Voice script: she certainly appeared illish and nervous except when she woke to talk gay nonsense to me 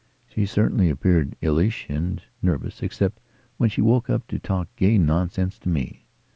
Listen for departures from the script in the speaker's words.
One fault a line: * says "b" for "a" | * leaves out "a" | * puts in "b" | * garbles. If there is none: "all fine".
* puts in "up"